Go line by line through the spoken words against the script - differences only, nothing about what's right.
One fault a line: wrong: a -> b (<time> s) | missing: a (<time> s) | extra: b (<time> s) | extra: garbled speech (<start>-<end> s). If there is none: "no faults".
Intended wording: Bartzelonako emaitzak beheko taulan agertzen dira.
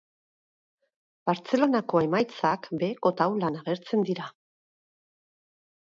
no faults